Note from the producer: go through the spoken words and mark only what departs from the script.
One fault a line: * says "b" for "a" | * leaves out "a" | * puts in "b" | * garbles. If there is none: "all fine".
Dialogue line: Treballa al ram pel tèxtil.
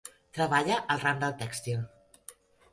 * says "del" for "pel"